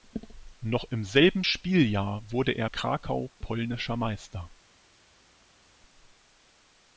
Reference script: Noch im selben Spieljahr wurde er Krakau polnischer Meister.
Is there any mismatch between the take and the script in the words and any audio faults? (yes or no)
no